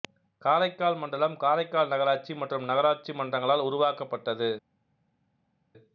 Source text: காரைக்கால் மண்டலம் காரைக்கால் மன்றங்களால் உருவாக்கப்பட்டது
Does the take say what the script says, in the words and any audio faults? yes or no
no